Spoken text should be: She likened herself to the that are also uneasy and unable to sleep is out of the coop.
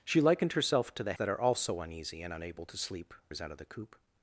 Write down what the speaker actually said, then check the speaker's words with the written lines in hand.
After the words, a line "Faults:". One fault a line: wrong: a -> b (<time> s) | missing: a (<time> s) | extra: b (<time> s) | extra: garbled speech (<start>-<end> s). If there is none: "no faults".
She likened herself to the that are also uneasy and unable to sleep is out of the coop.
Faults:
no faults